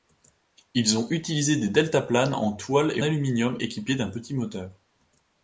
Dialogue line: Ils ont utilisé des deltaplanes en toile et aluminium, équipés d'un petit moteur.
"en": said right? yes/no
yes